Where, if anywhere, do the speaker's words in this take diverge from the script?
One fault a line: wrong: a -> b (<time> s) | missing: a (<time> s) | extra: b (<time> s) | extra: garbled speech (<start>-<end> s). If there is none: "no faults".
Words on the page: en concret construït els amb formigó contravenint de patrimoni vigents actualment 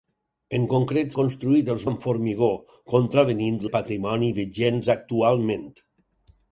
no faults